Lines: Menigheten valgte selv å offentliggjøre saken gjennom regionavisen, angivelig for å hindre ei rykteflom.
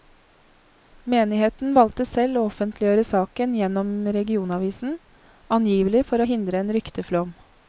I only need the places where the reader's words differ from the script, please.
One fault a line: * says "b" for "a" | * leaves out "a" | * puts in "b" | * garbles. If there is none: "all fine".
* says "en" for "ei"